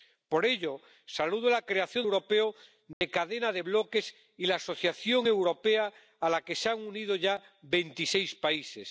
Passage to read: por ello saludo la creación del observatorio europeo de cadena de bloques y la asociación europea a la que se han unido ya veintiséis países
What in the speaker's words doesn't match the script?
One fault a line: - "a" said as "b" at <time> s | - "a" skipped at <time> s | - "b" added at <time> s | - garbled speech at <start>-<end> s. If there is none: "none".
- "del observatorio" skipped at 2.1 s